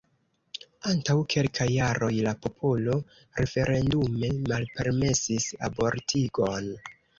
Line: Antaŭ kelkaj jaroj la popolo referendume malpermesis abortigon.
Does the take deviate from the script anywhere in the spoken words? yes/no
no